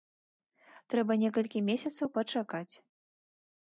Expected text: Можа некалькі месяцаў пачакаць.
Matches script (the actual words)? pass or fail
fail